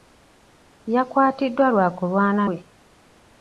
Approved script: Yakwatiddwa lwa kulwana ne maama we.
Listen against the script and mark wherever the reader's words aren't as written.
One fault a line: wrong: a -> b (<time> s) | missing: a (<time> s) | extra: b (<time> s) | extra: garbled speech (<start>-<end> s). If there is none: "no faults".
missing: ne maama (2.4 s)